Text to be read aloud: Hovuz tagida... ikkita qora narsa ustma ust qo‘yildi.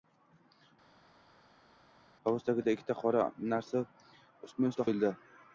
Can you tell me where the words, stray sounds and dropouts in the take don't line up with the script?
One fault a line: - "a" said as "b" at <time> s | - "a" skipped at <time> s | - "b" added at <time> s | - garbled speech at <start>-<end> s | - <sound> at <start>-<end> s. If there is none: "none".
none